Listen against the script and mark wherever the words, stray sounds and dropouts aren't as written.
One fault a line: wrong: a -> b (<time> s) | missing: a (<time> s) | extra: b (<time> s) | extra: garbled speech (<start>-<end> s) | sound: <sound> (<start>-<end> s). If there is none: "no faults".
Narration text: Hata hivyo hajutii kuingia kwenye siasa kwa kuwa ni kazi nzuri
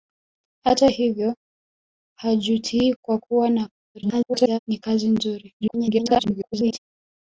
missing: kuingia kwenye siasa (2.9 s)
extra: garbled speech (3.9-4.6 s)
extra: garbled speech (5.6-6.8 s)